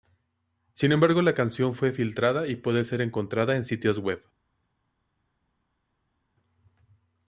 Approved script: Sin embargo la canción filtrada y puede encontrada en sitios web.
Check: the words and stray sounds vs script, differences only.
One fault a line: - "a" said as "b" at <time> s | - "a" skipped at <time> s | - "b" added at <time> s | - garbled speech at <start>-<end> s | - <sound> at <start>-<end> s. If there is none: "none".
- "fue" added at 1.7 s
- "ser" added at 2.9 s